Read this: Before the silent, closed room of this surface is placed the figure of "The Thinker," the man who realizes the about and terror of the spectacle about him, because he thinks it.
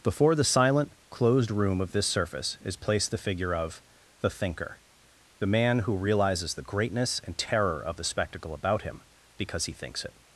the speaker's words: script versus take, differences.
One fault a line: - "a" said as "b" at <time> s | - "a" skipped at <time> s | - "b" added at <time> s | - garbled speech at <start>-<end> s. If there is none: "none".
- "about" said as "greatness" at 6.6 s